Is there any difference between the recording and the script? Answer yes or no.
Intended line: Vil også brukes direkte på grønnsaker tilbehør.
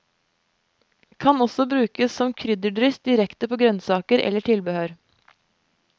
yes